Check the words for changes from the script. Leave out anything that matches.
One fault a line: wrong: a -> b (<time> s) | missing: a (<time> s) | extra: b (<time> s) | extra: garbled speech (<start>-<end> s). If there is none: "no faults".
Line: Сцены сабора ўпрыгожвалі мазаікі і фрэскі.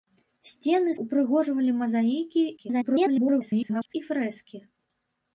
missing: сабора (0.9 s)
extra: garbled speech (2.6-3.9 s)